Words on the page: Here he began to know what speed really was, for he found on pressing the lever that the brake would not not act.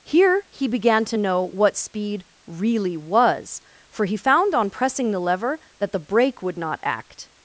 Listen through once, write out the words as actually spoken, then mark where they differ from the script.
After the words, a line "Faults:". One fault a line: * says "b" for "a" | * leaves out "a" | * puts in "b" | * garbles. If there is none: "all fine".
Here he began to know what speed really was, for he found on pressing the lever that the brake would not act.
Faults:
* leaves out "not"